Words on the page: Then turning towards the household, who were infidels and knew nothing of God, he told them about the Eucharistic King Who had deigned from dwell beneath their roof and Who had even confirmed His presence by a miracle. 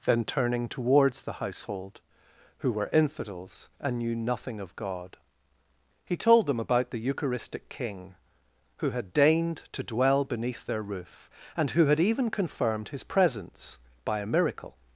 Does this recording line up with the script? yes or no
no